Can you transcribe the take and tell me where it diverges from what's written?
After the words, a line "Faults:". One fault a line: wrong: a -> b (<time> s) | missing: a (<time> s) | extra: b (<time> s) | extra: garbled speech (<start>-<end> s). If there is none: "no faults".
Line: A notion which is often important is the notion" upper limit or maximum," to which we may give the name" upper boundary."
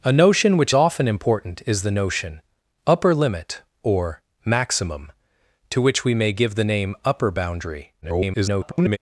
A notion which often important is the notion" upper limit or maximum," to which we may give the name" upper boundary." [garbled]
Faults:
missing: is (0.7 s)
extra: garbled speech (8.0-9.0 s)